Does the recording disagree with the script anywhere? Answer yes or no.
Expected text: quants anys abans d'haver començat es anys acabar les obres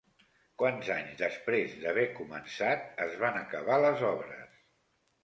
yes